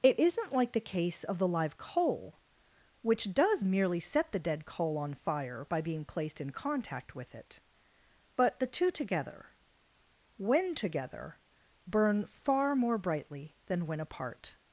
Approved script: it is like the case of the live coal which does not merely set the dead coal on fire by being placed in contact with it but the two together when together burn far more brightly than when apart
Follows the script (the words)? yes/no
no